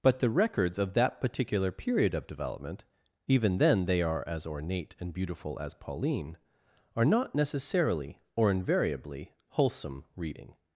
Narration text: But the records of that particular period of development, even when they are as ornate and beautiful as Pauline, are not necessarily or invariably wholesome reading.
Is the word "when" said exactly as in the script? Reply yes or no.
no